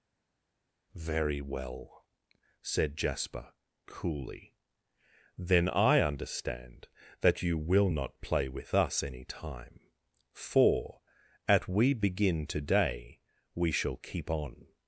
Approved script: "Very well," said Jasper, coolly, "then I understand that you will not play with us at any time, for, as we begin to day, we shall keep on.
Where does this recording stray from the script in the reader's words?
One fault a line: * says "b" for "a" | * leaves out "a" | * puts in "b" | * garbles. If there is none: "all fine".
* leaves out "at"
* says "at" for "as"